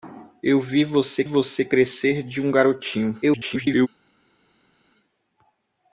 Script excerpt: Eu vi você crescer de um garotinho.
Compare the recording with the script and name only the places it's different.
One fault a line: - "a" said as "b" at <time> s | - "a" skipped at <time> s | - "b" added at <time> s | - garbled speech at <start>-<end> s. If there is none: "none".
- "você" added at 1.2 s
- garbled speech at 3.2-3.9 s